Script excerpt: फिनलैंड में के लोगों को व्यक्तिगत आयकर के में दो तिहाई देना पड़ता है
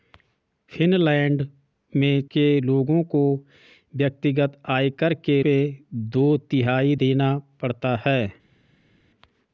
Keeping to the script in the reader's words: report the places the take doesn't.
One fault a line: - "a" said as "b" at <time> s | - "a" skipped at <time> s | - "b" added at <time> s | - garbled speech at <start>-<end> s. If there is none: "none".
none